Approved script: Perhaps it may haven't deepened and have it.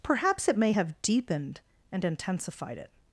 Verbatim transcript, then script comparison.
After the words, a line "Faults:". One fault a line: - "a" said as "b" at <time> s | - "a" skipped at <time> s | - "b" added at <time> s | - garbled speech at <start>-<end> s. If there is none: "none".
Perhaps it may have deepened and intensified it.
Faults:
- "haven't" said as "have" at 0.7 s
- "have" said as "intensified" at 2.0 s